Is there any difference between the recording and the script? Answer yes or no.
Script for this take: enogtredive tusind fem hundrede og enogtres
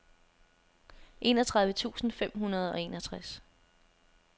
no